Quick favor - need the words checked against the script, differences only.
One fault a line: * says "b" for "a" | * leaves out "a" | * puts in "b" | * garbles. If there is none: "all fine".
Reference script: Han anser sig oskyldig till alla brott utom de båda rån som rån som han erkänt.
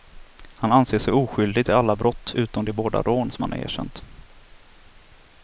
* leaves out "rån som"